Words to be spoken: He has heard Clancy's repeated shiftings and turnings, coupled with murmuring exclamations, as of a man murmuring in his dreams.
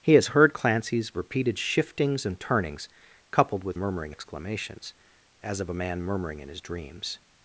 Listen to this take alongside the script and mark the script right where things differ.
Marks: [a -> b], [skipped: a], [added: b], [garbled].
He has heard Clancy's repeated shiftings and turnings, coupled with murmuring exclamations, as of a man murmuring in his dreams.